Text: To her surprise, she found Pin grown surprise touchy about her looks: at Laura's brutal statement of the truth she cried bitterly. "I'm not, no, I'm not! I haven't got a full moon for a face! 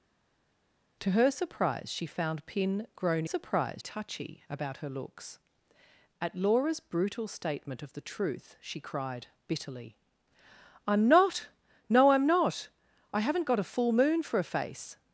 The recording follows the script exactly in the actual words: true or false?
true